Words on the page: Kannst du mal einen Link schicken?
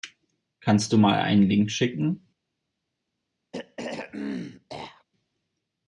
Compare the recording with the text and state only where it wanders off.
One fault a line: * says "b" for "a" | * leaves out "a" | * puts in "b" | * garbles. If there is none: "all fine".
all fine